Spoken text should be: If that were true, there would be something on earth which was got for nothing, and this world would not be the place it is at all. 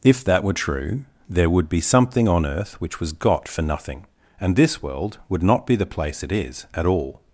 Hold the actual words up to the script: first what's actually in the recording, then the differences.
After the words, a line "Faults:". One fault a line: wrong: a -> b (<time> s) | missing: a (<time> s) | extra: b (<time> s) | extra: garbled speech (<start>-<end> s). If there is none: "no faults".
If that were true, there would be something on earth which was got for nothing, and this world would not be the place it is at all.
Faults:
no faults